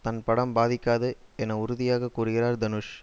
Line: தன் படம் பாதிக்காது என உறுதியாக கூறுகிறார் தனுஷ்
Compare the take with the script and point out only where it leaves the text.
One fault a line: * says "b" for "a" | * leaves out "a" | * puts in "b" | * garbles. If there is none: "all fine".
all fine